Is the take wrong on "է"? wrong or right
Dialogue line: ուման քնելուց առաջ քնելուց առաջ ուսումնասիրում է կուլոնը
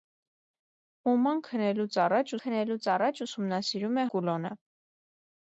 right